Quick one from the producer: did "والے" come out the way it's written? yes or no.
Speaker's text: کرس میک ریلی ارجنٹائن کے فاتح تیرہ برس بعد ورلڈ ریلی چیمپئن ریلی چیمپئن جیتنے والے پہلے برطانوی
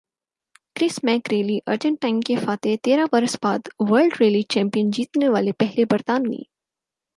yes